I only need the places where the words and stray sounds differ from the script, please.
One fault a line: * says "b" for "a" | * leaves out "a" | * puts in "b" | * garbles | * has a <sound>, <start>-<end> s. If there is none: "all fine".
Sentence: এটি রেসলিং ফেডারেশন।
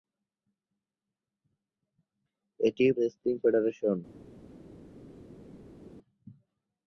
all fine